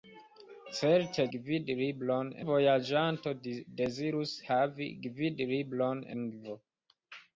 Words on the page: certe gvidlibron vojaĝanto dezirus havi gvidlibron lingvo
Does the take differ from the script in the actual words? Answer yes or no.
no